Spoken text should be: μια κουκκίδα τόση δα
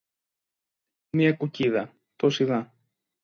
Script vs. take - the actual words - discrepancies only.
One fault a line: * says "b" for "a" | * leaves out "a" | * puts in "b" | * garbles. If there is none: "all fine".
all fine